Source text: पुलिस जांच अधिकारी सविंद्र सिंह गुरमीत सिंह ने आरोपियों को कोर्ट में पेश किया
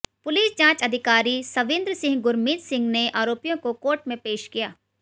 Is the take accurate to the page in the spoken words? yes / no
yes